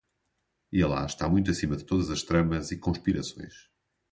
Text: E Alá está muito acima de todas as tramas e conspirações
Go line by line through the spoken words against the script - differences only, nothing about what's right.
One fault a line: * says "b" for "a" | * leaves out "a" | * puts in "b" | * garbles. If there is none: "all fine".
all fine